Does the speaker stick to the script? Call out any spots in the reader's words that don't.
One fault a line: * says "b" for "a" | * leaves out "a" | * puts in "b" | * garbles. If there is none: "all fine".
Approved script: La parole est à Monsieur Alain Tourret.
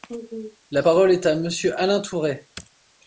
all fine